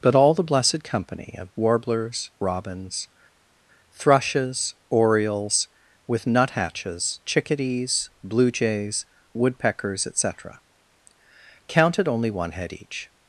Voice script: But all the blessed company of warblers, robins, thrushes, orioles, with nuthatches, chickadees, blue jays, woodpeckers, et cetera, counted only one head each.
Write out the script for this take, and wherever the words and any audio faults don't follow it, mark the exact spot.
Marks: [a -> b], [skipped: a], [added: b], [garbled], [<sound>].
But all the blessed company of warblers, robins, thrushes, orioles, with nuthatches, chickadees, blue jays, woodpeckers, et cetera, counted only one head each.